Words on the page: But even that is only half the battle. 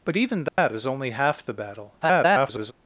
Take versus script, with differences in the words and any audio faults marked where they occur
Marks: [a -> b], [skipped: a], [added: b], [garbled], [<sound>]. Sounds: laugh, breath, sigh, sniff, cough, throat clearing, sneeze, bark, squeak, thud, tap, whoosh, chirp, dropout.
But even that [dropout] is only half the battle. [garbled]